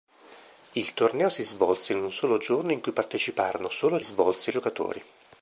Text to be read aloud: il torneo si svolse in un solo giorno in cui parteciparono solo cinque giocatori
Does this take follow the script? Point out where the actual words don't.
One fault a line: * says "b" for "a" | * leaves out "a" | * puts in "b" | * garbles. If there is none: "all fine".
* says "svolse" for "cinque"